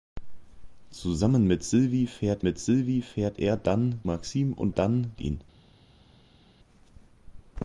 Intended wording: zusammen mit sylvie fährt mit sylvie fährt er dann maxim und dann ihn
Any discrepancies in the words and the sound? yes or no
no